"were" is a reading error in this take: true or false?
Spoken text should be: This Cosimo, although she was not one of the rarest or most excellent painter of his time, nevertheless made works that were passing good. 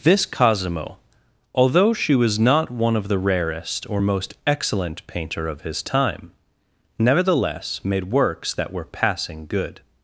false